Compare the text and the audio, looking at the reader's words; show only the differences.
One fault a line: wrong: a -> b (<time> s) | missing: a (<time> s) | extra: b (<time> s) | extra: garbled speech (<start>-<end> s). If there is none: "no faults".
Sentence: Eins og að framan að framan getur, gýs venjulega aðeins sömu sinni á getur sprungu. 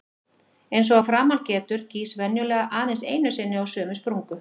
missing: að framan (1.4 s)
wrong: sömu -> einu (3.2 s)
wrong: getur -> sömu (3.8 s)